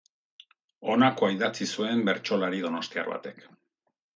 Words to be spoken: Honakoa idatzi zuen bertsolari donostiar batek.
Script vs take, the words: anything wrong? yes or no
no